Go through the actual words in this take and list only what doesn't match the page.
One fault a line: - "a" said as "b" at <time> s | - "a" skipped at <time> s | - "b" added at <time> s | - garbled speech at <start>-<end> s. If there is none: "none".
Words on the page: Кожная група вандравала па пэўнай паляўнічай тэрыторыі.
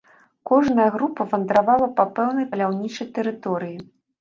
none